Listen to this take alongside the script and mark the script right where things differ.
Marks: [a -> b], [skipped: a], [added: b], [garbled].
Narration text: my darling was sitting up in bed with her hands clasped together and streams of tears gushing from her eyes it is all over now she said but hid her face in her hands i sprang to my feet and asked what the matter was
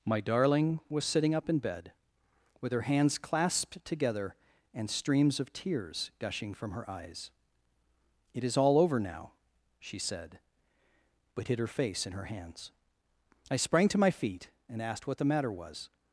my darling was sitting up in bed with her hands clasped together and streams of tears gushing from her eyes it is all over now she said but hid her face in her hands i sprang to my feet and asked what the matter was